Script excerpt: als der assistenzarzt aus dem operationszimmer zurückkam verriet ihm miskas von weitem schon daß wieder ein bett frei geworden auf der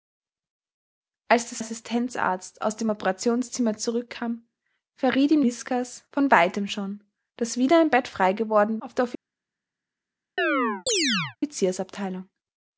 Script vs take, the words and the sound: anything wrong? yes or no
yes